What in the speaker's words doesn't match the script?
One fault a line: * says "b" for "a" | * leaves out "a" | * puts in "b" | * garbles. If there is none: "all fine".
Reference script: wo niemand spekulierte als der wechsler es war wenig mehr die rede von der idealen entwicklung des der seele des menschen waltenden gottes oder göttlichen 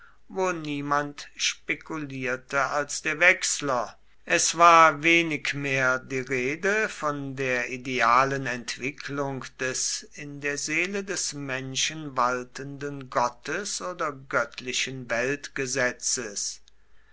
* puts in "in"